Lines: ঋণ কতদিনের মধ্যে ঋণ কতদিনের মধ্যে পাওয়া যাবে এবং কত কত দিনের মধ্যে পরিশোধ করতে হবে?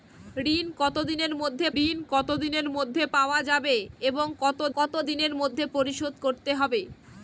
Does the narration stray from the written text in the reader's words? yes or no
no